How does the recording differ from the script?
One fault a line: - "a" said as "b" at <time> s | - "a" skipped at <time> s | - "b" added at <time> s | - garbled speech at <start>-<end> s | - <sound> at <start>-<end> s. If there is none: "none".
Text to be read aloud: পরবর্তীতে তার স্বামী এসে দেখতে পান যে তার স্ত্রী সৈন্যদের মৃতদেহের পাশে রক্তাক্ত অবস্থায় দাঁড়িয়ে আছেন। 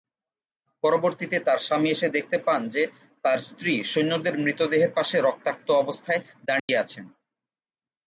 - dropout at 6.6-6.7 s